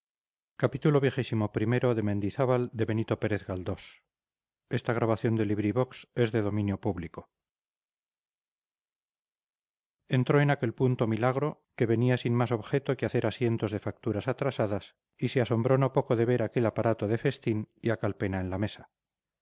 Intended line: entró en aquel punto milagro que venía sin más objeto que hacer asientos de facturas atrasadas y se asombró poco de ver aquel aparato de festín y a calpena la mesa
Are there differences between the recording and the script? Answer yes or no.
yes